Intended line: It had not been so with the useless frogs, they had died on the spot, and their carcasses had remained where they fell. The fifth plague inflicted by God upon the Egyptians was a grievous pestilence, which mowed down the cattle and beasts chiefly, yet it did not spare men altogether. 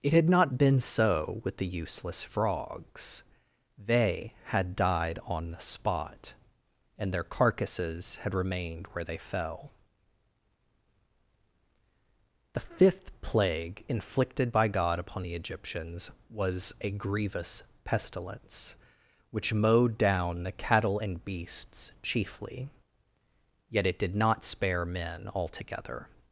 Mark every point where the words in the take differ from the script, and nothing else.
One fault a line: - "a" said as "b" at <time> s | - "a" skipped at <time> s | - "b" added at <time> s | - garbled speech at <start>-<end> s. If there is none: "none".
none